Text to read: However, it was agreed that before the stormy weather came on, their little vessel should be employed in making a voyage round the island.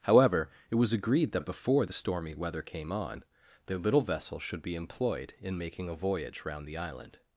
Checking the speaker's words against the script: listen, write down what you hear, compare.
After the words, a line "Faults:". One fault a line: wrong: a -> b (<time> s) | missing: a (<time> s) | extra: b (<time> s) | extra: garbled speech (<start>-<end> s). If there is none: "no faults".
However, it was agreed that before the stormy weather came on, their little vessel should be employed in making a voyage round the island.
Faults:
no faults